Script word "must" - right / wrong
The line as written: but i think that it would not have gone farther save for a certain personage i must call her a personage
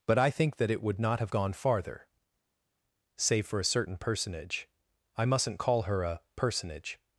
wrong